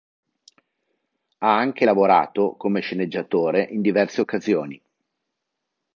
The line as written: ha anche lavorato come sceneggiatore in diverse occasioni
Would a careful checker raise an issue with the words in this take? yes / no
no